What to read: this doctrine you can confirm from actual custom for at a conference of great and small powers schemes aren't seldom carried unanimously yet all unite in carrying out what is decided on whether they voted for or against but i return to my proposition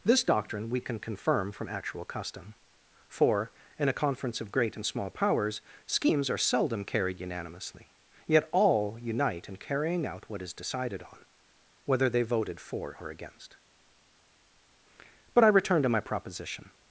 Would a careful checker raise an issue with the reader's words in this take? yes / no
yes